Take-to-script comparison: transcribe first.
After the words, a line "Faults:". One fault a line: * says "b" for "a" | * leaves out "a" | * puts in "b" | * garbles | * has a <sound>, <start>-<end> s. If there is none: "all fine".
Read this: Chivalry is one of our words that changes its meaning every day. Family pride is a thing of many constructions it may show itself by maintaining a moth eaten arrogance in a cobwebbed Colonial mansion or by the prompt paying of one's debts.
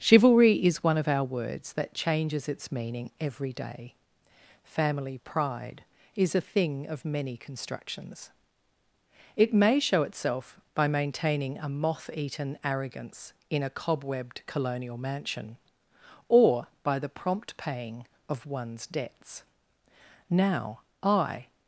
Chivalry is one of our words that changes its meaning every day. Family pride is a thing of many constructions it may show itself by maintaining a moth eaten arrogance in a cobwebbed Colonial mansion or by the prompt paying of one's debts. "Now, I
Faults:
* puts in "Now I"